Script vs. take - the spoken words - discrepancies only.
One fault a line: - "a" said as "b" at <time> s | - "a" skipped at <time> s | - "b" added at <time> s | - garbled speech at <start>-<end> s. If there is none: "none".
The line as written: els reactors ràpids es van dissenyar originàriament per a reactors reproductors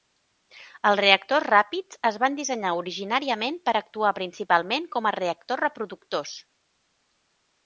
- "actuar principalment com" added at 3.8 s